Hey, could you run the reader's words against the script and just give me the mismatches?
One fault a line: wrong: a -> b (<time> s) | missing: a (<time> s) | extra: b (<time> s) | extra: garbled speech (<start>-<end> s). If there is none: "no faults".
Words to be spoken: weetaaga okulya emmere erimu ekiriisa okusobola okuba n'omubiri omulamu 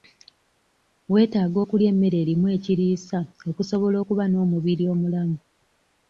no faults